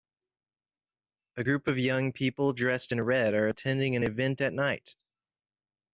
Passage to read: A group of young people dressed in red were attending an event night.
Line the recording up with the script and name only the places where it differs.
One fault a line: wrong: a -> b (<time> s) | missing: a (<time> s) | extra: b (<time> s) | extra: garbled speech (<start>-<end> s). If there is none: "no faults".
wrong: were -> are (3.3 s)
extra: at (4.4 s)